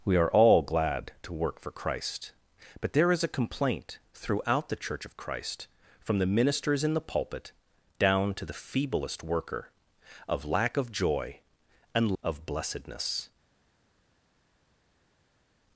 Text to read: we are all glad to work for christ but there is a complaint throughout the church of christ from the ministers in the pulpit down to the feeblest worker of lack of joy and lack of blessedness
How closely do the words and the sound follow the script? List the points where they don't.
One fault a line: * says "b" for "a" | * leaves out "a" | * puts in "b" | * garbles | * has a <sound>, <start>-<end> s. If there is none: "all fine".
* leaves out "lack"